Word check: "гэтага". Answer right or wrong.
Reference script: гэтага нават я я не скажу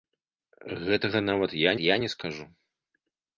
right